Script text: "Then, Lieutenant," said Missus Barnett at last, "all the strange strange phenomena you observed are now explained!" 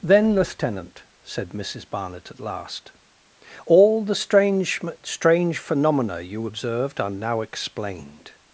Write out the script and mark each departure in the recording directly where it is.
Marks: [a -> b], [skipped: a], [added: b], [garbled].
"Then, Lieutenant," said Missus Barnett at last, "all the strange strange phenomena you observed are now explained!"